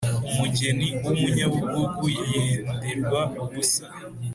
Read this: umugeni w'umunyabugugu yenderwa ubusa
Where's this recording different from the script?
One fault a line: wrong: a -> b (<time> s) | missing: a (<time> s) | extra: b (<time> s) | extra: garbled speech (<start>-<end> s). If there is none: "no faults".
no faults